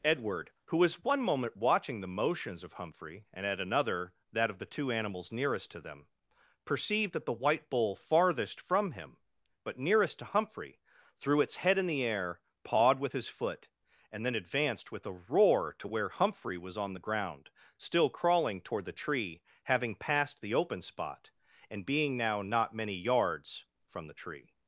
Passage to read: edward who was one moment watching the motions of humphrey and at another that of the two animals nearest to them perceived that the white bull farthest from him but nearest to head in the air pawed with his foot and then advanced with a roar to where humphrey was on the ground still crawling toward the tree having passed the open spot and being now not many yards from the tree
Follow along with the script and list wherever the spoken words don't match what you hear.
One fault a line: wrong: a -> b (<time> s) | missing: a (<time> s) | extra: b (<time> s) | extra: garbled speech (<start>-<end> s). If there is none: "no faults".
extra: humphrey threw its (10.2 s)